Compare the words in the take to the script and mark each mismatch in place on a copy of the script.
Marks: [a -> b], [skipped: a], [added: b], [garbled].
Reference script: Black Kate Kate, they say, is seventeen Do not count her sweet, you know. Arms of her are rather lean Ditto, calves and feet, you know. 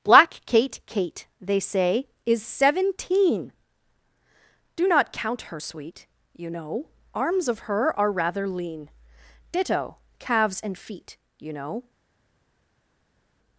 Black Kate Kate, they say, is seventeen Do not count her sweet, you know. Arms of her are rather lean Ditto, calves and feet, you know.